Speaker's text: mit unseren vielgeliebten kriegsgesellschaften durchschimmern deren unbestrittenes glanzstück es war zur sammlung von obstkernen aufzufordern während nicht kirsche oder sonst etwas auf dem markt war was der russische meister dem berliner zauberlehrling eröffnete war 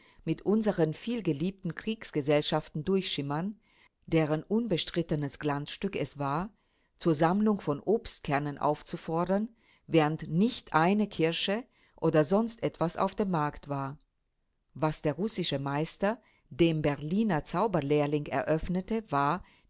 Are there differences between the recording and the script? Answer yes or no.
yes